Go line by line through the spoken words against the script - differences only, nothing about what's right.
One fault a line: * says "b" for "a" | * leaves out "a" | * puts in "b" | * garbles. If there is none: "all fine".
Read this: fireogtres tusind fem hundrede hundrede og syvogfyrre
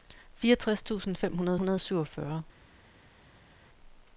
all fine